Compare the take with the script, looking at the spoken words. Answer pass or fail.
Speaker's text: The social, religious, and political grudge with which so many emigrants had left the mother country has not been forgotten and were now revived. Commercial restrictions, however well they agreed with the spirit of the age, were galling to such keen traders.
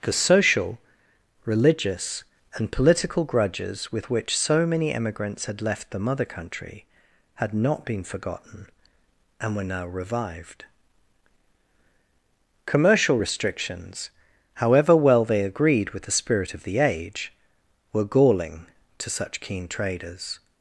fail